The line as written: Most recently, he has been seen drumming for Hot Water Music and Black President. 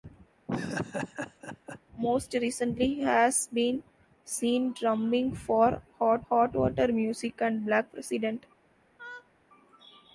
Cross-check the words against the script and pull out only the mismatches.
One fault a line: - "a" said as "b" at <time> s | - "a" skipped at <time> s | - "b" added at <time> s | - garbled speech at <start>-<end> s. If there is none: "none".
- "Hot" added at 6.3 s